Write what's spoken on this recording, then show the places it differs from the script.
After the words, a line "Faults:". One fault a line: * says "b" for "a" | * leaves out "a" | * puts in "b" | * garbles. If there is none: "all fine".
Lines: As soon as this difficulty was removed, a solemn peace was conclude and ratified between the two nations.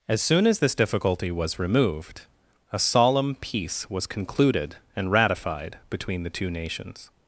As soon as this difficulty was removed, a solemn peace was concluded and ratified between the two nations.
Faults:
* says "concluded" for "conclude"